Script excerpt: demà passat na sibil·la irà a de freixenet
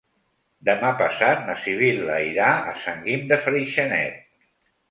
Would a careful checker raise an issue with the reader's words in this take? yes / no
yes